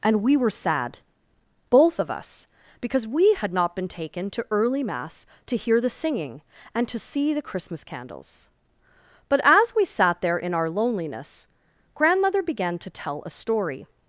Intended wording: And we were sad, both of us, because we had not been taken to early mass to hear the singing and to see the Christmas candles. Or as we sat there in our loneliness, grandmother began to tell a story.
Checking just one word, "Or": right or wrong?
wrong